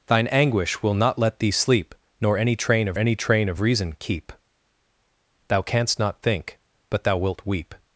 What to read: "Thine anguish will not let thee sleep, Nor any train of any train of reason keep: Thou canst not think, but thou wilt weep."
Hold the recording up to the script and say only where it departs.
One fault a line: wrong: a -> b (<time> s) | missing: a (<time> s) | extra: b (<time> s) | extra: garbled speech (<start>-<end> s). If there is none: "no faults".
no faults